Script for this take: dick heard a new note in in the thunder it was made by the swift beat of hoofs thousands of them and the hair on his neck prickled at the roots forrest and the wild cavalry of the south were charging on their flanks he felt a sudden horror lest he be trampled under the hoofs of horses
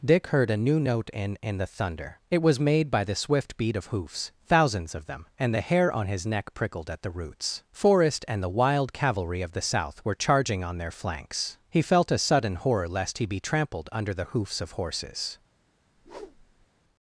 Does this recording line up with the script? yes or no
yes